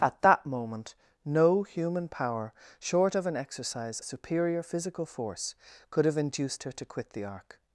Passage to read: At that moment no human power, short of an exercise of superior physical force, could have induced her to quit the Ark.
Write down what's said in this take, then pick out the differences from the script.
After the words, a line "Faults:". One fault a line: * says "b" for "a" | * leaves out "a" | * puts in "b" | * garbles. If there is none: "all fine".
At that moment no human power, short of an exercise superior physical force, could have induced her to quit the Ark.
Faults:
* leaves out "of"